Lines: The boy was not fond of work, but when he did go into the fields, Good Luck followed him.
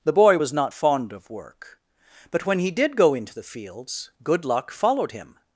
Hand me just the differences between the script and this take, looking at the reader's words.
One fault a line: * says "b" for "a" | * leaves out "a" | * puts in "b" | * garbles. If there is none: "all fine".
all fine